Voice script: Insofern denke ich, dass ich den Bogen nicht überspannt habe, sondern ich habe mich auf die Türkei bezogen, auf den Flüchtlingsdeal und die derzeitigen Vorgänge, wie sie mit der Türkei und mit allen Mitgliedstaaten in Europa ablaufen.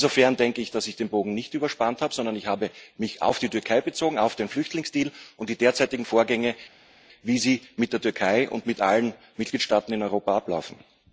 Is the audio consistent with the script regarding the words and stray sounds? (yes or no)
yes